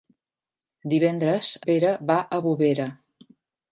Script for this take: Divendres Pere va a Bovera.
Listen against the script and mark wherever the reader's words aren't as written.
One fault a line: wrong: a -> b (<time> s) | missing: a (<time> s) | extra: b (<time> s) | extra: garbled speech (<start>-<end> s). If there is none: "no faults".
no faults